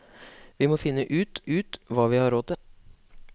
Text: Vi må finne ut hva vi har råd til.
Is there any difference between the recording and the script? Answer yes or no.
yes